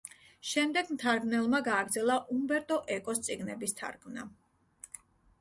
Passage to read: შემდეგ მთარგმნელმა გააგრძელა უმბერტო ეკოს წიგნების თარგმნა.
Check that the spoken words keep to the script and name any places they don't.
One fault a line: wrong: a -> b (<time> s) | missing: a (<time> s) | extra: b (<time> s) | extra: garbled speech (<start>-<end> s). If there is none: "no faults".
no faults